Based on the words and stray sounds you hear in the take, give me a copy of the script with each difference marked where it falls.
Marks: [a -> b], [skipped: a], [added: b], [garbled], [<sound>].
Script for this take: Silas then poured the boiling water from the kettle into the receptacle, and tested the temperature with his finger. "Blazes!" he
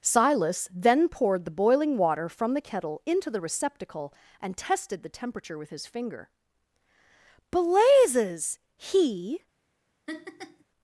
Silas then poured the boiling water from the kettle into the receptacle, and tested the temperature with his finger. "Blazes!" he [laugh]